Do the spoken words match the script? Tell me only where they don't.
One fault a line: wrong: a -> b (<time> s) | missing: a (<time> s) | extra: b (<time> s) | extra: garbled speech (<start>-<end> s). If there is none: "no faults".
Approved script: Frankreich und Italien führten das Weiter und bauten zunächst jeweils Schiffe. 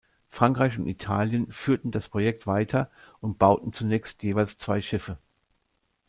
extra: Projekt (2.0 s)
extra: zwei (4.6 s)